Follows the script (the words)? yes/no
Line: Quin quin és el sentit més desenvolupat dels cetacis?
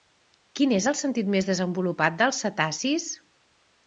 no